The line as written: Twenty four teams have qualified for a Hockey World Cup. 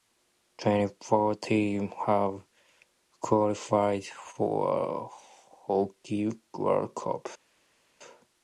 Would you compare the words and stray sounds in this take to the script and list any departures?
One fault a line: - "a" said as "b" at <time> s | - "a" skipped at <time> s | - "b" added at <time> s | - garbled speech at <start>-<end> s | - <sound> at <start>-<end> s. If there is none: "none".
none